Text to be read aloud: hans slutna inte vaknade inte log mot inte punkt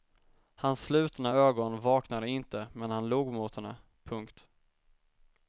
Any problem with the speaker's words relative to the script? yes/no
yes